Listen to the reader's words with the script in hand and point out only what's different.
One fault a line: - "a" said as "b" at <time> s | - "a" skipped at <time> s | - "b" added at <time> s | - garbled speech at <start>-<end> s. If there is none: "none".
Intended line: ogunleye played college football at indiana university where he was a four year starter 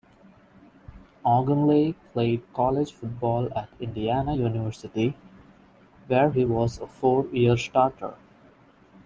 none